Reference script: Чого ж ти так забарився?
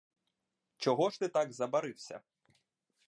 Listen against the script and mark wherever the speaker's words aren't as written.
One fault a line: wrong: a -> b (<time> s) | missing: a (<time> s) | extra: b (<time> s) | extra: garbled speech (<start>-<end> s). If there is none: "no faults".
no faults